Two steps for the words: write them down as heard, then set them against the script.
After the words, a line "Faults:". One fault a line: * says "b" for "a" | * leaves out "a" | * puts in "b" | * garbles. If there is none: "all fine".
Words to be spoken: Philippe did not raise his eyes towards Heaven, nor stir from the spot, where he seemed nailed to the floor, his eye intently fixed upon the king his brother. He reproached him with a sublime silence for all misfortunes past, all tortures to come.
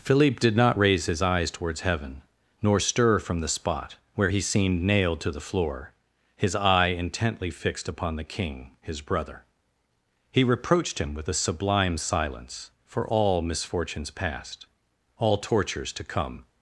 Philippe did not raise his eyes towards Heaven, nor stir from the spot, where he seemed nailed to the floor, his eye intently fixed upon the king his brother. He reproached him with a sublime silence for all misfortunes past, all tortures to come.
Faults:
all fine